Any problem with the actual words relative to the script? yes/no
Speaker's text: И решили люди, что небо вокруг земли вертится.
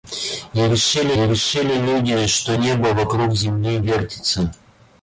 yes